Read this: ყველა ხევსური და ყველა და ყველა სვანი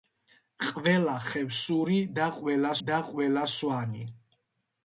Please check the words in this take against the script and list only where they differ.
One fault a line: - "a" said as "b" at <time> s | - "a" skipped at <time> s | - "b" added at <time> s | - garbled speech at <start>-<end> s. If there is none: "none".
none